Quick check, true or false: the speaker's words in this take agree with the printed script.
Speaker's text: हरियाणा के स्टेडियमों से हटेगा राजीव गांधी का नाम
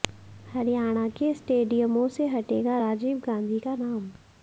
true